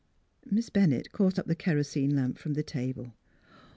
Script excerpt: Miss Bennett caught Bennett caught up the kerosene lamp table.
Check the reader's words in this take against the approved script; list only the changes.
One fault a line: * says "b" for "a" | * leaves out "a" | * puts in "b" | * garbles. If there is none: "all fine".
* leaves out "Bennett caught"
* puts in "from the"